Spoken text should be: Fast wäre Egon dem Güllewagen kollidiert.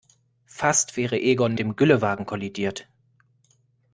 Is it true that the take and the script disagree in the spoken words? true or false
false